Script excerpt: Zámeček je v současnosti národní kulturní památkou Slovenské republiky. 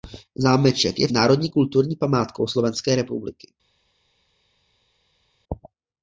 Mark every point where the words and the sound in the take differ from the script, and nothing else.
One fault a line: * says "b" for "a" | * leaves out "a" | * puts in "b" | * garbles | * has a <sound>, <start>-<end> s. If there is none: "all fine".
* leaves out "současnosti"